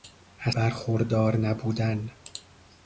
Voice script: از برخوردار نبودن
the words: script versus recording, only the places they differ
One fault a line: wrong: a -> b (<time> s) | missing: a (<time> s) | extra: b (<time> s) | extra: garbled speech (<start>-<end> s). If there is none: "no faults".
no faults